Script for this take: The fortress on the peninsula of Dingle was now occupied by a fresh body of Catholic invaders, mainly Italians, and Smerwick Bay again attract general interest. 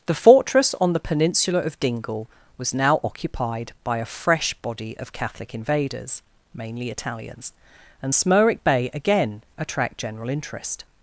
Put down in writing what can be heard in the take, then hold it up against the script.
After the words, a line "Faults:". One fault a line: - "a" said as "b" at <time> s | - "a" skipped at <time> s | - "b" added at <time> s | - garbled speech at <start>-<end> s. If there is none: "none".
The fortress on the peninsula of Dingle was now occupied by a fresh body of Catholic invaders, mainly Italians, and Smerwick Bay again attract general interest.
Faults:
none